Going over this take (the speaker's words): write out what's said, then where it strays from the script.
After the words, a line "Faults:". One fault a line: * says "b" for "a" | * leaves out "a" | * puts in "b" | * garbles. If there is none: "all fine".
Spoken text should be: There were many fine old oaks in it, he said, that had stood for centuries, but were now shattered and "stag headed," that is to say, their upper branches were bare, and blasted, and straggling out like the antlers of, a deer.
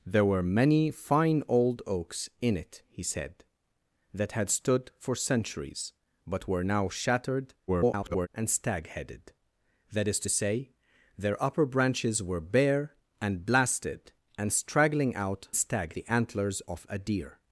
There were many fine old oaks in it, he said, that had stood for centuries, but were now shattered [garbled] and "stag headed," that is to say, their upper branches were bare, and blasted, and straggling out stag the antlers of, a deer.
Faults:
* garbles
* says "stag" for "like"